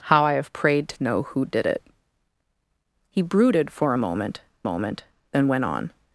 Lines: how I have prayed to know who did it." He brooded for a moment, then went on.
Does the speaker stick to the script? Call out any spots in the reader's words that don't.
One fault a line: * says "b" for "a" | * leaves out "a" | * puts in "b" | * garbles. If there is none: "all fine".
* puts in "moment"